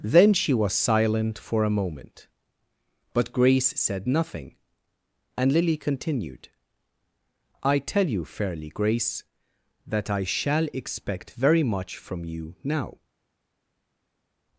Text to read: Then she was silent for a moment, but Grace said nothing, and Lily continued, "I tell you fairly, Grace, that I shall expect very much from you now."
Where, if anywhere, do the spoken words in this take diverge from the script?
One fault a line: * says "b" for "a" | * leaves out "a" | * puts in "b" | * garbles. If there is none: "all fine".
all fine